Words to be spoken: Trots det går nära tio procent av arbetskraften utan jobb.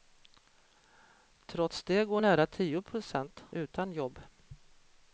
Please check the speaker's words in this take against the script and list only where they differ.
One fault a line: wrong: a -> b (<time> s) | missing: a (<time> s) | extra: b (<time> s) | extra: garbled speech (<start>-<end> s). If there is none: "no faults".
missing: av arbetskraften (3.4 s)